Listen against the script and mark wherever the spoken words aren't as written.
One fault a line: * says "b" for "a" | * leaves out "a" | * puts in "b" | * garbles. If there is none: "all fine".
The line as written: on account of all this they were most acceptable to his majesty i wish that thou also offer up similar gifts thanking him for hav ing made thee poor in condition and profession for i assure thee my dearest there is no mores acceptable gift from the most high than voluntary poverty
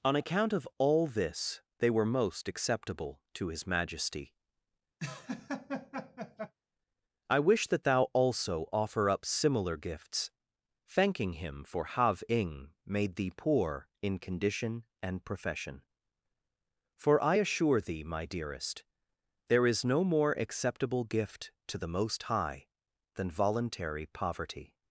* says "more" for "mores"
* says "to" for "from"